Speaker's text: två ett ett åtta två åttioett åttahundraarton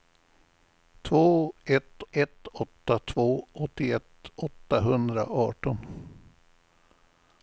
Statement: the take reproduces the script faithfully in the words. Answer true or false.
true